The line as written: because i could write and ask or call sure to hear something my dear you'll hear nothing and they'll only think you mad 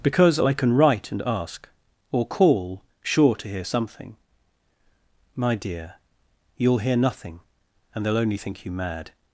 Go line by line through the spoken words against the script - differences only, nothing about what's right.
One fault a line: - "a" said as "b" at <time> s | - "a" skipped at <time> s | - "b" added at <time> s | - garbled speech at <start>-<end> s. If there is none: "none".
- "could" said as "can" at 0.5 s